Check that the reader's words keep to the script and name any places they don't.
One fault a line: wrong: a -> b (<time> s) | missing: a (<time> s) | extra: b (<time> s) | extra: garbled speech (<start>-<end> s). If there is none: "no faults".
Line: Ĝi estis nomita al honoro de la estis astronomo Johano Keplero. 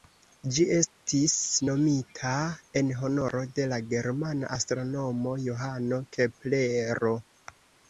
wrong: al -> en (2.8 s)
wrong: estis -> germana (4.0 s)